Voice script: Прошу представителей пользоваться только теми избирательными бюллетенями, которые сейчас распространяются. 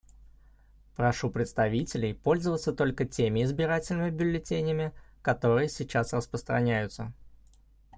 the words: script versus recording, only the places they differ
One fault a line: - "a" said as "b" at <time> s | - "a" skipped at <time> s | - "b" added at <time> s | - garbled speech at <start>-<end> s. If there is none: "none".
none